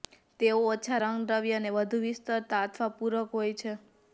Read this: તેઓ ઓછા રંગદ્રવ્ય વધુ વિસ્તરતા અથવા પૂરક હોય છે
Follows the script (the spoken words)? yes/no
no